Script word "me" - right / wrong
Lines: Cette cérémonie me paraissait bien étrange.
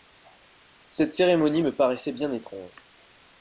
right